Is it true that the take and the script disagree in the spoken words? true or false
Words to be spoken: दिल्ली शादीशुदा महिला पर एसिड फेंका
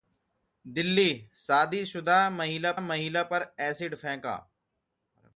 true